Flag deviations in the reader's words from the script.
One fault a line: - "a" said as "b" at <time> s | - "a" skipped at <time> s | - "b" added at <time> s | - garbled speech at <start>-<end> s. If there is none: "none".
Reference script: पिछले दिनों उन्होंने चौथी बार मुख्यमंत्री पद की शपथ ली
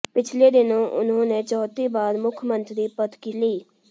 - "शपथ" skipped at 3.3 s